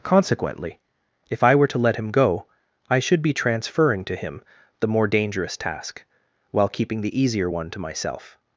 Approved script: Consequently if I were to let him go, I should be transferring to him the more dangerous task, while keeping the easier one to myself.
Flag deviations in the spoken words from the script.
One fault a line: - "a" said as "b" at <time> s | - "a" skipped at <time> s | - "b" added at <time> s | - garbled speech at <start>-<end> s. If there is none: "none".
none